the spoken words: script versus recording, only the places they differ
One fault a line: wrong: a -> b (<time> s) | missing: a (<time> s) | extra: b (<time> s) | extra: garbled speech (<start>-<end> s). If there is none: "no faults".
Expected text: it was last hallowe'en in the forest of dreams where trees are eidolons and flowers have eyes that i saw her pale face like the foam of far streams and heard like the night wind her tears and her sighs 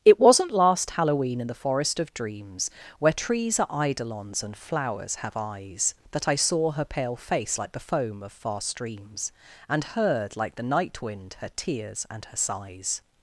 wrong: was -> wasn't (0.2 s)